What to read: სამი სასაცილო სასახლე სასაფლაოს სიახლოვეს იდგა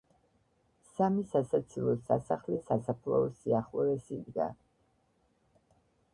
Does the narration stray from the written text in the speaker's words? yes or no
no